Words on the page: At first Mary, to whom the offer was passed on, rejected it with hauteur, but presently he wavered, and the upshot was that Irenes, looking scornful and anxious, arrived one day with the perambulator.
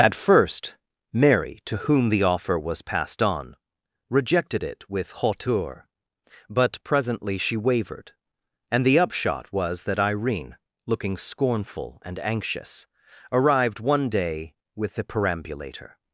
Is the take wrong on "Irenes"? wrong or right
wrong